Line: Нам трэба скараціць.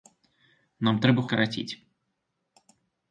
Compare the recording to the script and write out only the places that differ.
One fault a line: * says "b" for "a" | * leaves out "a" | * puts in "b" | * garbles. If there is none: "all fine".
all fine